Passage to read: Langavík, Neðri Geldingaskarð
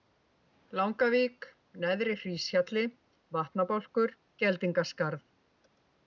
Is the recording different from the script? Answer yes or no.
yes